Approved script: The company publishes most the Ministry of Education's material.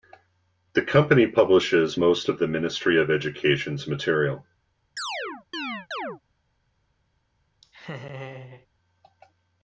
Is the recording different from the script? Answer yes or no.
yes